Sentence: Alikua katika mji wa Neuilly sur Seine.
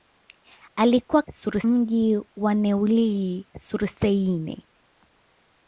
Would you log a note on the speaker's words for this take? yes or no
yes